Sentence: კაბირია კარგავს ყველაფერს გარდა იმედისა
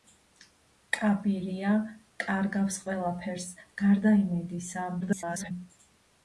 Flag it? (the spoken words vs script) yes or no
yes